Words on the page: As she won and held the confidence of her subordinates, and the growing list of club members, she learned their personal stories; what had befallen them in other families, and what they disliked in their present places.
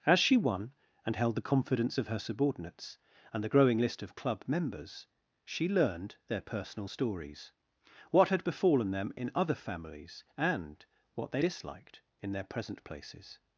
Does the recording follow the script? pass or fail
pass